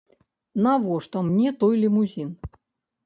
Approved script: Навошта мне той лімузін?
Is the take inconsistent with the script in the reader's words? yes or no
no